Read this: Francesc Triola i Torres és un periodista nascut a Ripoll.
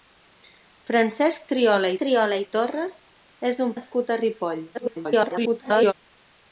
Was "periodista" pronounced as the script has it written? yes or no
no